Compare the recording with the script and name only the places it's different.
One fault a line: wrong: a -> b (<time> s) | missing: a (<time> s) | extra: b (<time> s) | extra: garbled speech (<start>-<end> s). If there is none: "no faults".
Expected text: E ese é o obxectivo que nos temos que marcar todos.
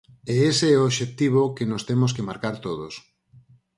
no faults